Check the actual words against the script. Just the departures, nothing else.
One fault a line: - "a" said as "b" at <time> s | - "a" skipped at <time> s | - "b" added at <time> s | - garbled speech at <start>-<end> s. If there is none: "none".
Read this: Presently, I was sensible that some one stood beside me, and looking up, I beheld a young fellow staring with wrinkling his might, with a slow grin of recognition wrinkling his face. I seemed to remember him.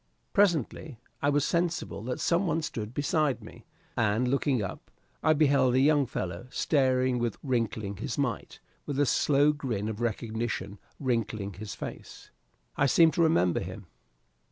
none